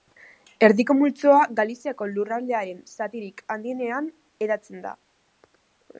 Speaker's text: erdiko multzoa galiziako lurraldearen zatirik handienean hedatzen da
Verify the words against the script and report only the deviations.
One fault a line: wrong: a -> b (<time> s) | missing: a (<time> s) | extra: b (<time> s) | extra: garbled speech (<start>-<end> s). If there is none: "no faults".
no faults